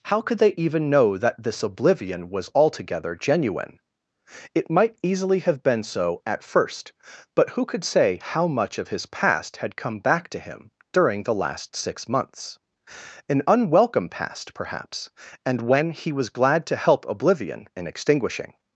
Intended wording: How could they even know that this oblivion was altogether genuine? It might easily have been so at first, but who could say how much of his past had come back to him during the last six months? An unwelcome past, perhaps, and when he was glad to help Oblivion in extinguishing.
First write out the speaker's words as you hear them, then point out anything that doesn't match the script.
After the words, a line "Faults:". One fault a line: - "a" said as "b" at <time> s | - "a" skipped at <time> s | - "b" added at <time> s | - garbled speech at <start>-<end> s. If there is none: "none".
How could they even know that this oblivion was altogether genuine? It might easily have been so at first, but who could say how much of his past had come back to him during the last six months? An unwelcome past, perhaps, and when he was glad to help Oblivion in extinguishing.
Faults:
none